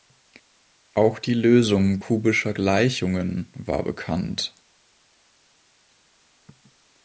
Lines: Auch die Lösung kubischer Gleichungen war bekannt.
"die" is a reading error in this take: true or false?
false